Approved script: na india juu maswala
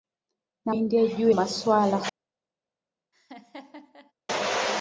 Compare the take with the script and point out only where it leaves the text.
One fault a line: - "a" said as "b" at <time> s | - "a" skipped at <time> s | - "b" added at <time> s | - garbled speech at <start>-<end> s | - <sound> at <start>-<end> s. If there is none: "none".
- laugh at 3.1-4.1 s